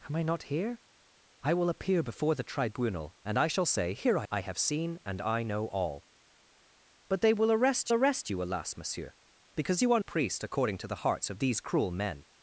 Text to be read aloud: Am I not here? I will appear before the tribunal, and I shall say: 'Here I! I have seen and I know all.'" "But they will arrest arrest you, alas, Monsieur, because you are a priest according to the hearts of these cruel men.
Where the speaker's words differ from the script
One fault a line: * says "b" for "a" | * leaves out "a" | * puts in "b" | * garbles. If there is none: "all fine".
all fine